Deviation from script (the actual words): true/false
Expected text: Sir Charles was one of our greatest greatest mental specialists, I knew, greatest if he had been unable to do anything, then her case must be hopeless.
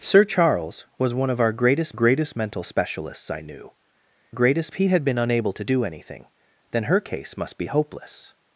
false